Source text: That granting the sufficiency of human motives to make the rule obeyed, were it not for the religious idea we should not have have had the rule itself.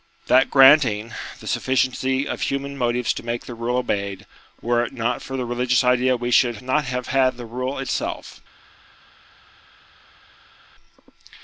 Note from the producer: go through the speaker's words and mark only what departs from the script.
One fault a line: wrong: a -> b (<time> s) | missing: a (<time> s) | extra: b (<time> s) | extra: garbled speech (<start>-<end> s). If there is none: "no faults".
missing: have (7.1 s)